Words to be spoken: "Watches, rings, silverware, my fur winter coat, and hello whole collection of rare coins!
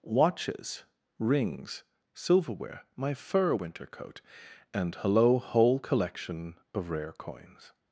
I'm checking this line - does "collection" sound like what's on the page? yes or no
yes